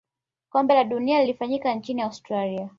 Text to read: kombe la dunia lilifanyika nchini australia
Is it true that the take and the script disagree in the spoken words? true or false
false